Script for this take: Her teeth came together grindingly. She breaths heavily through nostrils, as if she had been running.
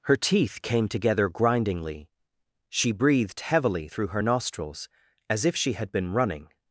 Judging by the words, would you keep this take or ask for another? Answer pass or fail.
fail